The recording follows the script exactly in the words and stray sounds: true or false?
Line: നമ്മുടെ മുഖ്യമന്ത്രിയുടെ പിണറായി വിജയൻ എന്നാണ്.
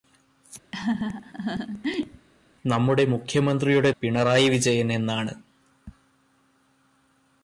false